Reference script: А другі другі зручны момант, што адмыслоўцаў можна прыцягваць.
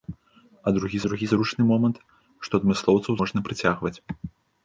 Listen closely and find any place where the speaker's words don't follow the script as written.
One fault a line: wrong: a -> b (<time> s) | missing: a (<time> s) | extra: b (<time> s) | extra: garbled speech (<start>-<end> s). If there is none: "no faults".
no faults